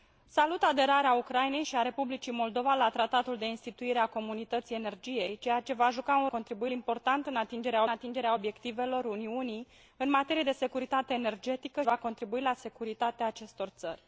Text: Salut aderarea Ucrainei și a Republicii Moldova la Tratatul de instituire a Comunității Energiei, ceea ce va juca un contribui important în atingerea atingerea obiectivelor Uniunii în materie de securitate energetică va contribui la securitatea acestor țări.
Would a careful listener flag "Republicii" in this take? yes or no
no